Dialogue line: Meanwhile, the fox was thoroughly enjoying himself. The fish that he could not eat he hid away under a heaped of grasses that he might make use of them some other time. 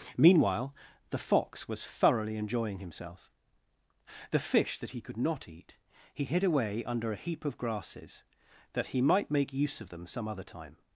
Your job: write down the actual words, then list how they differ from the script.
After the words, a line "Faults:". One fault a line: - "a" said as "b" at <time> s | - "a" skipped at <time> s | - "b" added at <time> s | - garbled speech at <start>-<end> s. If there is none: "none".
Meanwhile, the fox was thoroughly enjoying himself. The fish that he could not eat he hid away under a heap of grasses that he might make use of them some other time.
Faults:
- "heaped" said as "heap" at 7.2 s